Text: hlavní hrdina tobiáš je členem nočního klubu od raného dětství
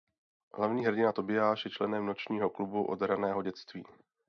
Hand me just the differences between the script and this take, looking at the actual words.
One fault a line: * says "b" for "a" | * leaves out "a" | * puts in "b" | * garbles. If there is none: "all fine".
all fine